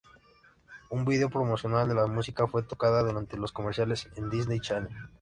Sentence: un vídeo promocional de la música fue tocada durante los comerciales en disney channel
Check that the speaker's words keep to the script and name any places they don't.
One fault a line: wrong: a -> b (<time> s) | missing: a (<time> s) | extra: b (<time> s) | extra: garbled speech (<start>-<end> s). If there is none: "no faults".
no faults